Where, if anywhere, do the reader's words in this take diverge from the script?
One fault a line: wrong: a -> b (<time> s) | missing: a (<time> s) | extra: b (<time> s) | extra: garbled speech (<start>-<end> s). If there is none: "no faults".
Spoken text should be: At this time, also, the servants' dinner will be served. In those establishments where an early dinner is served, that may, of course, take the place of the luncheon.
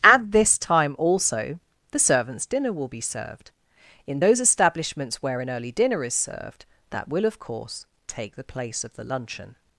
wrong: may -> will (7.1 s)